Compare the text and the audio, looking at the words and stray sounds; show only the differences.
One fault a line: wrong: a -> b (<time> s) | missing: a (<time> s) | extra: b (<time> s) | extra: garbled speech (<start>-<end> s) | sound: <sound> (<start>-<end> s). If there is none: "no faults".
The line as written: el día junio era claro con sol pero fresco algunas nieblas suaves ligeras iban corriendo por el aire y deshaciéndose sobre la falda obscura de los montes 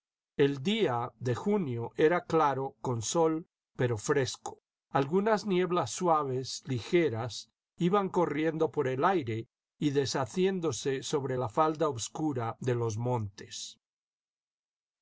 extra: de (1.2 s)